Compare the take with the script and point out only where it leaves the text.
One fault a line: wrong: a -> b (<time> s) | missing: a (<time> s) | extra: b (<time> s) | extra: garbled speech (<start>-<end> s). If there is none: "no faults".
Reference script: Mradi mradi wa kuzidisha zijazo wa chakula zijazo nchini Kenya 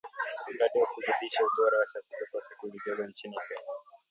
missing: mradi (0.8 s)
wrong: zijazo -> ubora (1.5 s)
extra: kwa siku (2.3 s)